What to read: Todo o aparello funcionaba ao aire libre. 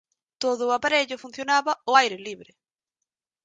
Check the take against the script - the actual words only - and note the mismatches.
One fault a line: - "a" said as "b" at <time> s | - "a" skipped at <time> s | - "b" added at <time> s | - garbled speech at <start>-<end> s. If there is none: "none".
none